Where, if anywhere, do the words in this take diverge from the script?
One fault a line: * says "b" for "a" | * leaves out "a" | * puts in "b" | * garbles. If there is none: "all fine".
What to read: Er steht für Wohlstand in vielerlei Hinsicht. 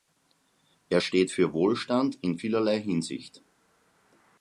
all fine